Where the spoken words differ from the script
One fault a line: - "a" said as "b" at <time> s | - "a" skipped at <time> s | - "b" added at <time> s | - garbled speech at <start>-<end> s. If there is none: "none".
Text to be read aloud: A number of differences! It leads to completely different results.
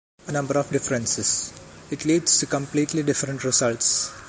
none